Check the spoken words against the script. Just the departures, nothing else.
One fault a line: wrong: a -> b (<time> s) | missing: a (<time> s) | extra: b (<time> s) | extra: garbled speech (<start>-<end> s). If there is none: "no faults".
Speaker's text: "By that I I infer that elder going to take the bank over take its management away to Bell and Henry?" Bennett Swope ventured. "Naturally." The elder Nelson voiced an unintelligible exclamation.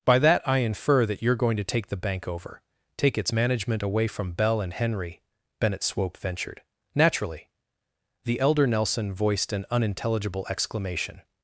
missing: I (0.6 s)
wrong: elder -> you're (1.2 s)
wrong: to -> from (4.1 s)